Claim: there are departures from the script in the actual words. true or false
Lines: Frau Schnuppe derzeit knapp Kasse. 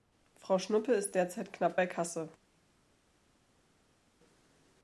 true